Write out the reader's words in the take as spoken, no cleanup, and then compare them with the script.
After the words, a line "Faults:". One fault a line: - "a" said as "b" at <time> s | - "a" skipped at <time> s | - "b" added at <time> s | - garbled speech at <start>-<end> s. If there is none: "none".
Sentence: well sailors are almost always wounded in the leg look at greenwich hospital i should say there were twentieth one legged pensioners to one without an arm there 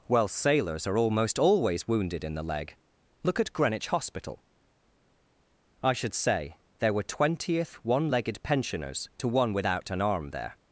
well sailors are almost always wounded in the leg look at greenwich hospital i should say there were twentieth one legged pensioners to one without an arm there
Faults:
none